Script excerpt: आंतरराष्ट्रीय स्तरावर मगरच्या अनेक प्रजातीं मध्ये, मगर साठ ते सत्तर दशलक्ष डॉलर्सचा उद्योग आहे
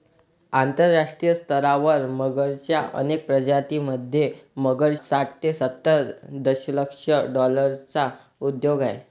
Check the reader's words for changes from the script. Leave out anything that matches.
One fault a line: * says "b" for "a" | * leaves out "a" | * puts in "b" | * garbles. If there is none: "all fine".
all fine